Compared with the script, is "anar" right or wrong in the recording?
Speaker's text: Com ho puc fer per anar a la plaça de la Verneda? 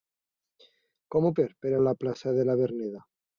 wrong